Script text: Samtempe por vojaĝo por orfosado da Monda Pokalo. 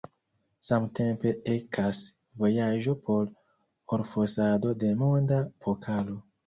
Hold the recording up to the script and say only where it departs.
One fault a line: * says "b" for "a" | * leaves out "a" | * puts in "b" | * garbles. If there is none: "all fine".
* says "ekas" for "por"
* says "de" for "da"